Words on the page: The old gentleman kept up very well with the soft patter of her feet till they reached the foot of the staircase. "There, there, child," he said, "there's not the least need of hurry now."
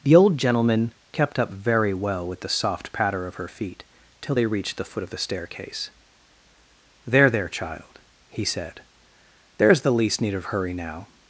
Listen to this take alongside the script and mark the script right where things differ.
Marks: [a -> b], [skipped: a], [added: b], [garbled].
The old gentleman kept up very well with the soft patter of her feet till they reached the foot of the staircase. "There, there, child," he said, "there's [skipped: not] the least need of hurry now."